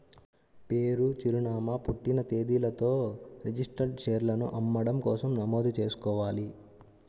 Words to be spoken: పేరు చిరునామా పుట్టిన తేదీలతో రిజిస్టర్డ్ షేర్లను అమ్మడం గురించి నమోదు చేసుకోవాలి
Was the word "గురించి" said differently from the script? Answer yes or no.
yes